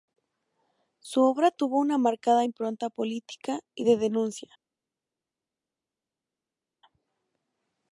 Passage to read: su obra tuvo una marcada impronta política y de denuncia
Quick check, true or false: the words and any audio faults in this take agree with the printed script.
true